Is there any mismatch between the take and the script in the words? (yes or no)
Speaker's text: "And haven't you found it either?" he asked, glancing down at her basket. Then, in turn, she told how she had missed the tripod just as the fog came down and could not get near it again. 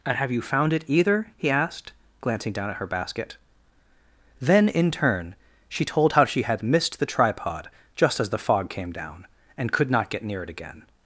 yes